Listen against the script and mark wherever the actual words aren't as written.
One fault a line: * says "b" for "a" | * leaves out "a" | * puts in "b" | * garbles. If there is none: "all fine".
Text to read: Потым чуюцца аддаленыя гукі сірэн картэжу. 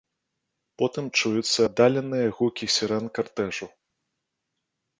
all fine